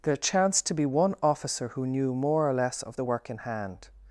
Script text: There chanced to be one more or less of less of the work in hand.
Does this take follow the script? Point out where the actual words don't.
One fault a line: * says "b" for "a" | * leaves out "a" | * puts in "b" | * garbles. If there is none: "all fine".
* puts in "officer who knew"
* leaves out "less of"